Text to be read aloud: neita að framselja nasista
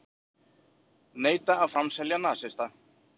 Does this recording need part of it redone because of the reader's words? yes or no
no